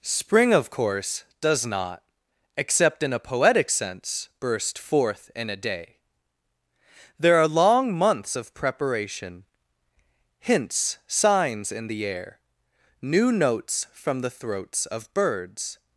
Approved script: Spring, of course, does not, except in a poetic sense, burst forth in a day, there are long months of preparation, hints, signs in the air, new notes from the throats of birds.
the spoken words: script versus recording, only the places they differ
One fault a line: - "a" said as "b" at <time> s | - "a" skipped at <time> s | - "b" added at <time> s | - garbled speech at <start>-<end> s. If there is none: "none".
none